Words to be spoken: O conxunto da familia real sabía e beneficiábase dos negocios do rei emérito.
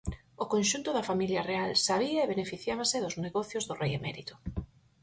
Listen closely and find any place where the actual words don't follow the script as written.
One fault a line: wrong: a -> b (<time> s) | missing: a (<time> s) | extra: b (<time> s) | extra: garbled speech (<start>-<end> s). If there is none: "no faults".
no faults